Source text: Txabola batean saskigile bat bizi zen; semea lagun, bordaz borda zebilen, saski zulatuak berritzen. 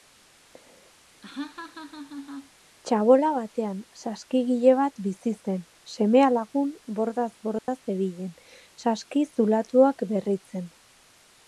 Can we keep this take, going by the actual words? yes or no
yes